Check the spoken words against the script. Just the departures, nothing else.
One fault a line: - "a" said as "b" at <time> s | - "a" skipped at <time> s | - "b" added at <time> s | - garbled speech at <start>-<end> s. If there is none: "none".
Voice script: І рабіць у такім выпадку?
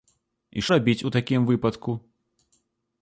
none